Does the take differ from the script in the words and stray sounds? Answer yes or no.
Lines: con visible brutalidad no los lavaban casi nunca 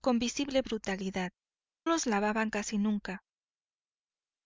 yes